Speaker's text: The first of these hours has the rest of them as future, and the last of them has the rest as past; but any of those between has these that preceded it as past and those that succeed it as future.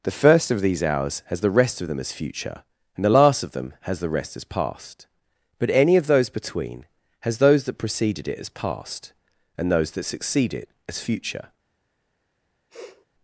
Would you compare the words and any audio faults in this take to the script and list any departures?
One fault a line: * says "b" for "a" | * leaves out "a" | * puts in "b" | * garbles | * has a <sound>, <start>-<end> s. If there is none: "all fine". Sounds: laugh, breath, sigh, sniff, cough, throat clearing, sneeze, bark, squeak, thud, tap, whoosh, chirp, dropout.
* says "those" for "these"
* has a sniff, 12.7-13.1 s